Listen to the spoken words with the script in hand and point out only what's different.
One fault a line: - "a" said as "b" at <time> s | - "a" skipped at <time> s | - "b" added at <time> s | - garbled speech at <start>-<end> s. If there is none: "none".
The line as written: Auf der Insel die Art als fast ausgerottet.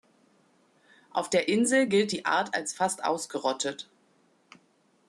- "gilt" added at 1.9 s